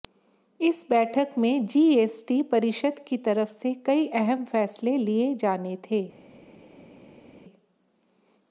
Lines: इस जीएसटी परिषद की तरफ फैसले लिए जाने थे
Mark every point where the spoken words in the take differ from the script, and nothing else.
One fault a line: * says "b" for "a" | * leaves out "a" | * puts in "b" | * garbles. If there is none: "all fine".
* puts in "बैठक में"
* puts in "से कई अहम"